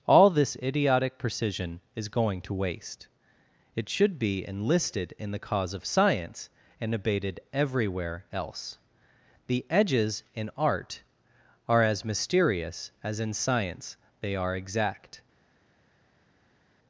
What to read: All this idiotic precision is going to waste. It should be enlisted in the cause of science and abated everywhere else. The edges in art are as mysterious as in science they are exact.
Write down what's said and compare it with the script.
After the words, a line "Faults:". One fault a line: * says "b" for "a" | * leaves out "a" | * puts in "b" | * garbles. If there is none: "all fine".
All this idiotic precision is going to waste. It should be enlisted in the cause of science and abated everywhere else. The edges in art are as mysterious as in science they are exact.
Faults:
all fine